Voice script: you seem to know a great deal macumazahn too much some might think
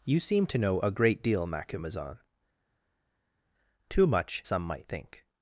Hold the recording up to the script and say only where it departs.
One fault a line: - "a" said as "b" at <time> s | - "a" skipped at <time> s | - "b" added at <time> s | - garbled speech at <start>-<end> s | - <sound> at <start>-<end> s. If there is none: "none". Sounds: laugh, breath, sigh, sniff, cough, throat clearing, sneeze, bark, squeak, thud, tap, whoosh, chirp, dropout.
none